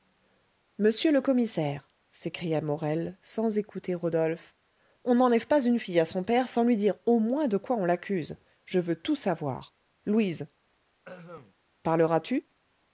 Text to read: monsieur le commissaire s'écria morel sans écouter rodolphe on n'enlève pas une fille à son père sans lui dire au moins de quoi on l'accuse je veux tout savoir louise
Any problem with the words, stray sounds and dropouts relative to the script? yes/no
yes